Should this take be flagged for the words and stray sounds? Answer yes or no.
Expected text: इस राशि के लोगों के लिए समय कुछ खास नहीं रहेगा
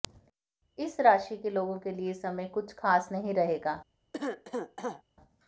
yes